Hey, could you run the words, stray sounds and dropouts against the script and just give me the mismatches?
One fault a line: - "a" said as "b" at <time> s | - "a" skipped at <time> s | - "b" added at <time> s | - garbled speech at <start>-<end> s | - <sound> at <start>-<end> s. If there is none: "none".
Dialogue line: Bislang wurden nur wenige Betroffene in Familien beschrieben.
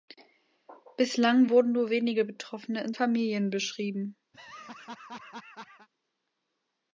- laugh at 4.3-5.9 s